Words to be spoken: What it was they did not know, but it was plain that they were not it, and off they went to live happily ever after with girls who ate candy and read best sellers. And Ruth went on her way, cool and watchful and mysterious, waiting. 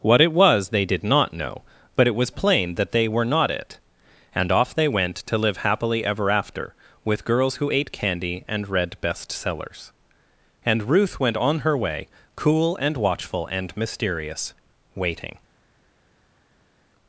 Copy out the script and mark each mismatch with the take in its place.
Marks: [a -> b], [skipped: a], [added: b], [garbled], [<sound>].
What it was they did not know, but it was plain that they were not it, and off they went to live happily ever after with girls who ate candy and read best sellers. And Ruth went on her way, cool and watchful and mysterious, waiting.